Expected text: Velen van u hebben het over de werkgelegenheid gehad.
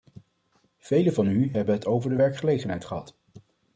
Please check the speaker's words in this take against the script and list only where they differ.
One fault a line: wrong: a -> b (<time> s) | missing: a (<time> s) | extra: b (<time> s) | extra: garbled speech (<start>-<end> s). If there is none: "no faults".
no faults